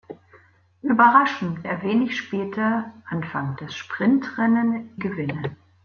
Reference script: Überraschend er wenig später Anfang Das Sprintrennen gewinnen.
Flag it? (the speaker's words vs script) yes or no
no